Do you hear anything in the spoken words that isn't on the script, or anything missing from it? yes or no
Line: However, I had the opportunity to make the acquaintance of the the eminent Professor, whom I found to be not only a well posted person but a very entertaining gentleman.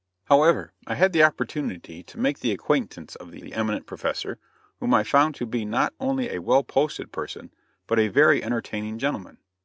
no